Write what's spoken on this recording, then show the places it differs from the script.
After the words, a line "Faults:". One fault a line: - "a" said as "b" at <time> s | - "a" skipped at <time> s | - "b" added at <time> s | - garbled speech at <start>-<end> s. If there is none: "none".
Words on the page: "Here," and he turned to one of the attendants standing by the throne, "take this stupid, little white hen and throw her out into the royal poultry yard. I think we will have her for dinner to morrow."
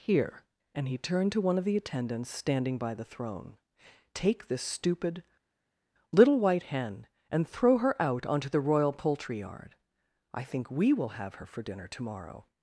"Here," and he turned to one of the attendants standing by the throne, "take this stupid, little white hen and throw her out onto the royal poultry yard. I think we will have her for dinner to morrow."
Faults:
- "into" said as "onto" at 8.3 s